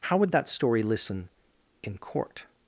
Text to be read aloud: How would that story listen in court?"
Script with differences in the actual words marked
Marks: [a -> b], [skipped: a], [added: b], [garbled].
How would that story listen in court?"